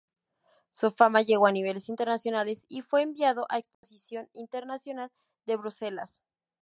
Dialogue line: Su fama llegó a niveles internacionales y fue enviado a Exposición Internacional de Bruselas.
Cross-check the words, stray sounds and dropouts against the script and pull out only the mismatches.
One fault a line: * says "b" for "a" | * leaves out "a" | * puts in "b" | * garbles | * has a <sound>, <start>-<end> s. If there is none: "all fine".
* has a dropout, 3.7-3.8 s